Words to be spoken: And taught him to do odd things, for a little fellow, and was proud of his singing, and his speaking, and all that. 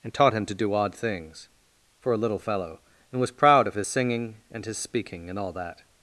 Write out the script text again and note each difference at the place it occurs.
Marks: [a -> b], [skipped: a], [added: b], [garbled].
And taught him to do odd things, for a little fellow, and was proud of his singing, and his speaking, and all that.